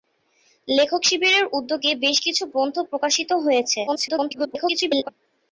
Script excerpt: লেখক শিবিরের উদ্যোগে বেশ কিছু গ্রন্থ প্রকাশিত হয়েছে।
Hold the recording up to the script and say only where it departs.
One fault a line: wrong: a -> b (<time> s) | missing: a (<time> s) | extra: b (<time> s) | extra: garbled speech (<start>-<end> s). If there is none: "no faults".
extra: garbled speech (3.9-5.1 s)